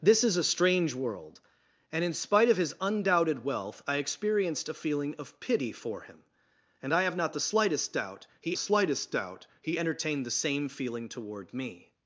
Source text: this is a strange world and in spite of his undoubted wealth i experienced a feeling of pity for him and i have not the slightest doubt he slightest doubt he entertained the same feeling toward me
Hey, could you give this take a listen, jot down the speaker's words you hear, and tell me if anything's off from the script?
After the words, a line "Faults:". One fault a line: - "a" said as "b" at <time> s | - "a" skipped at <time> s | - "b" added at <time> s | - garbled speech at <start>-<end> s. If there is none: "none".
this is a strange world and in spite of his undoubted wealth i experienced a feeling of pity for him and i have not the slightest doubt he slightest doubt he entertained the same feeling toward me
Faults:
none